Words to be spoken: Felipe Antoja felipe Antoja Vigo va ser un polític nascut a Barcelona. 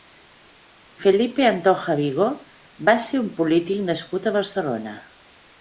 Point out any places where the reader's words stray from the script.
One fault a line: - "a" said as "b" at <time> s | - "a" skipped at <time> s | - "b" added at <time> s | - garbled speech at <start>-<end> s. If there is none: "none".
- "felipe Antoja" skipped at 1.9 s